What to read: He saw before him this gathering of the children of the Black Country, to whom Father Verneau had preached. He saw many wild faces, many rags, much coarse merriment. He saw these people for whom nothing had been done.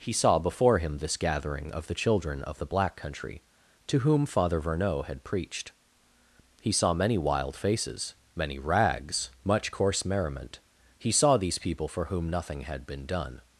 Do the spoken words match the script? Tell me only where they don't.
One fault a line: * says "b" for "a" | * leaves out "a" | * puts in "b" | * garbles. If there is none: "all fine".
all fine